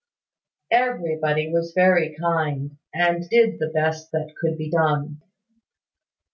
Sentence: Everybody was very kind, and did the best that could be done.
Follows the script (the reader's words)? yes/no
yes